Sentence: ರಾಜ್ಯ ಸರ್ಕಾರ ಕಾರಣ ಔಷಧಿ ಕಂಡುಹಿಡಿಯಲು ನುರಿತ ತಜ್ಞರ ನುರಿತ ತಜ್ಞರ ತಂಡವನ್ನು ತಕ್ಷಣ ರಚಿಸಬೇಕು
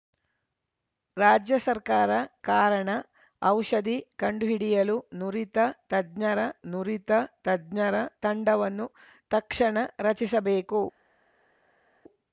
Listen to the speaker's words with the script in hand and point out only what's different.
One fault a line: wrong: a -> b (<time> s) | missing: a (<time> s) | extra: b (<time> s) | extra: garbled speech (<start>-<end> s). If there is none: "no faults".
no faults